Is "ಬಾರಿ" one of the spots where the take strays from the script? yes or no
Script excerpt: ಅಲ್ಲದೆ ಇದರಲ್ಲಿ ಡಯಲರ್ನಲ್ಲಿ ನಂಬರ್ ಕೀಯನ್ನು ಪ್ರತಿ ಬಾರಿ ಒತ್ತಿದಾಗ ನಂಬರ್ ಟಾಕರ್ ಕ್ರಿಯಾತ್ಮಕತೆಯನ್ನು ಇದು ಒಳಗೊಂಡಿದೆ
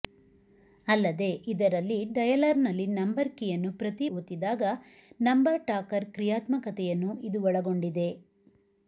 yes